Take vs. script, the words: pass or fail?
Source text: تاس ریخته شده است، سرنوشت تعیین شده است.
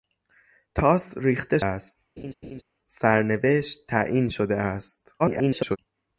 fail